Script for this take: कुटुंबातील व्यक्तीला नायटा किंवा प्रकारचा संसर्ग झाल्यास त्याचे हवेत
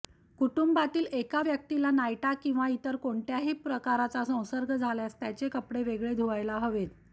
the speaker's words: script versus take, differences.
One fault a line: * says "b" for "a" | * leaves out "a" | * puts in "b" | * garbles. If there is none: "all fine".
* puts in "एका"
* puts in "इतर कोणत्याही"
* puts in "कपडे वेगळे धुवायला"